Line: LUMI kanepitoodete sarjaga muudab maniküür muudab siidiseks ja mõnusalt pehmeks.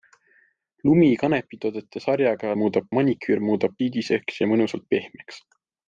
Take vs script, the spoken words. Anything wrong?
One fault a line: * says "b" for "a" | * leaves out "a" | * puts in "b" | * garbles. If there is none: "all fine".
all fine